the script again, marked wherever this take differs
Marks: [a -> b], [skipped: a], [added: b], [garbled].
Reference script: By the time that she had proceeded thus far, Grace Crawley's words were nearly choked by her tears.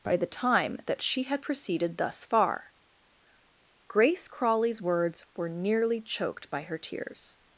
By the time that she had proceeded thus far, Grace Crawley's words were nearly choked by her tears.